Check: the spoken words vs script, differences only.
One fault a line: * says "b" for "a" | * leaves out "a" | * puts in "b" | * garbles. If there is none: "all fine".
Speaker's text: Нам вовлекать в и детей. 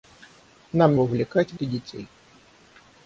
all fine